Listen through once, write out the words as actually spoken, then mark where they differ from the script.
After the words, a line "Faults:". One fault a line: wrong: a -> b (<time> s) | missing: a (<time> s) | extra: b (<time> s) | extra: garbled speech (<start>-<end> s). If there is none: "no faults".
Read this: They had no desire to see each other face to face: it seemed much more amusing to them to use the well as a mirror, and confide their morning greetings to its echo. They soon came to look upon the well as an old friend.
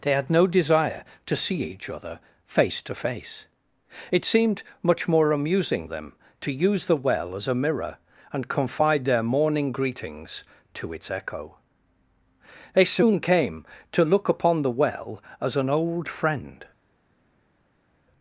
They had no desire to see each other face to face: it seemed much more amusing them to use the well as a mirror, and confide their morning greetings to its echo. They soon came to look upon the well as an old friend.
Faults:
missing: to (5.8 s)